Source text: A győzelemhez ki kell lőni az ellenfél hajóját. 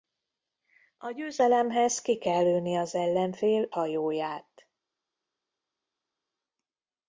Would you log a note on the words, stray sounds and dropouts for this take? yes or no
no